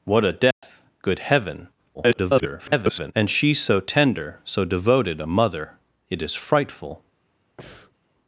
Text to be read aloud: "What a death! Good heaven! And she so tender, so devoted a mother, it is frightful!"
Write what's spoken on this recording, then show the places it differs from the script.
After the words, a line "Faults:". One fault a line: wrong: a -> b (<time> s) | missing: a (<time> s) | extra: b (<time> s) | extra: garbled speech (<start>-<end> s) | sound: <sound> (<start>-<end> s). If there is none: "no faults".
"What a death! Good heaven! [garbled] And she so tender, so devoted a mother, it is frightful!"
Faults:
sound: dropout (0.5-0.6 s)
extra: garbled speech (1.9-3.1 s)
sound: breath (7.6-8.0 s)